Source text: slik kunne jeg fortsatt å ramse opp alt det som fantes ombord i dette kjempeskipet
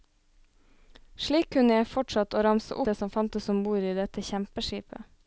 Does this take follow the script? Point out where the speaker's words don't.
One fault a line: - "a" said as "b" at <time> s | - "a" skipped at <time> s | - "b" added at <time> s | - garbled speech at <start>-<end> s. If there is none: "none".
- "opp alt" skipped at 2.8 s